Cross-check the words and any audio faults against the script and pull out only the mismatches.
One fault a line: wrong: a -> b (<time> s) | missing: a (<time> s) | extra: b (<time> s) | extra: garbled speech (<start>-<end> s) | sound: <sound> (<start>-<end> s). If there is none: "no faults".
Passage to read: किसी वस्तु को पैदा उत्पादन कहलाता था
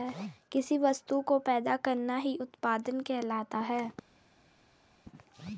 extra: करना ही (1.8 s)
wrong: था -> है (3.6 s)